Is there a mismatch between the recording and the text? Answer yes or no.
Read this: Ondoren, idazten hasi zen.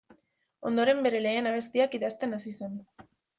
yes